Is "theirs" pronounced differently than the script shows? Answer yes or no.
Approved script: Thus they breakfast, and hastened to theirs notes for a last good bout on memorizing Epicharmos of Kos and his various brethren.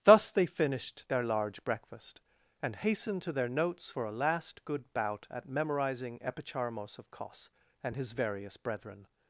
yes